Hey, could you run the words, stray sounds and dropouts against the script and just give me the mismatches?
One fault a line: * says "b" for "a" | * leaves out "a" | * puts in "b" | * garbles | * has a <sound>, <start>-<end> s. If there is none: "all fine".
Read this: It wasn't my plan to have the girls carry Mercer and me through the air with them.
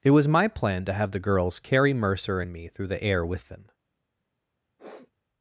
* says "was" for "wasn't"
* has a sniff, 4.8-5.1 s